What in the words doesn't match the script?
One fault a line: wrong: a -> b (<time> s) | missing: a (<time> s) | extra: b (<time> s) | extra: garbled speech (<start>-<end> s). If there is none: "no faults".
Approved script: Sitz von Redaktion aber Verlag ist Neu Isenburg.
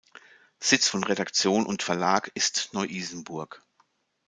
wrong: aber -> und (1.6 s)